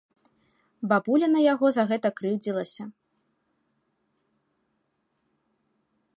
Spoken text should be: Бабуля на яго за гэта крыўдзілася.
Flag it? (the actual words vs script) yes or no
no